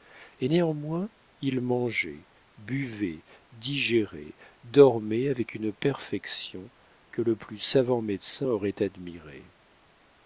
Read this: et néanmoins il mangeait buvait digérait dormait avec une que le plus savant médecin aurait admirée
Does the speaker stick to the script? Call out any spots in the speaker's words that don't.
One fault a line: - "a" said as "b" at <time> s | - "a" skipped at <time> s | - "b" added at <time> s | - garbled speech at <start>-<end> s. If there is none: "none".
- "perfection" added at 5.7 s